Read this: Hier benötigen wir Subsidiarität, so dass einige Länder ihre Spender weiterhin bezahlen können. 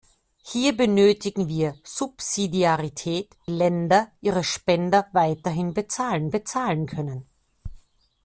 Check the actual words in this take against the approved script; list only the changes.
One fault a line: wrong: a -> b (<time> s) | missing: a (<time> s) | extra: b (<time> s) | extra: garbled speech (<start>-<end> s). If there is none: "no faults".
missing: so dass einige (3.4 s)
extra: bezahlen (6.3 s)